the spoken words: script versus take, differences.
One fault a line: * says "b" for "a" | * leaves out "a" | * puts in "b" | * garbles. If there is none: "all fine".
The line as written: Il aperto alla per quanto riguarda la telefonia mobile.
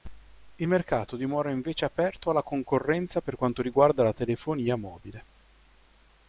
* puts in "mercato dimora invece"
* puts in "concorrenza"